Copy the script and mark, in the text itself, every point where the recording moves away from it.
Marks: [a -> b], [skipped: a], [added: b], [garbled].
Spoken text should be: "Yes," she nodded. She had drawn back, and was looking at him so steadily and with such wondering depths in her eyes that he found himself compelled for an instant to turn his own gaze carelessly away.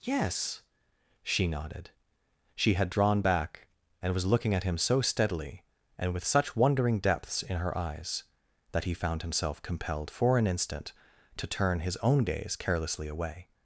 "Yes," she nodded. She had drawn back, and was looking at him so steadily and with such wondering depths in her eyes that he found himself compelled for an instant to turn his own gaze carelessly away.